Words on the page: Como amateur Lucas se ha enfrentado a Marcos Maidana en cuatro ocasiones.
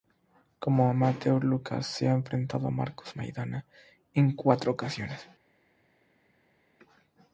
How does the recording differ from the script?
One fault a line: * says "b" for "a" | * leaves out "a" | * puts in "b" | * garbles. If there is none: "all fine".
all fine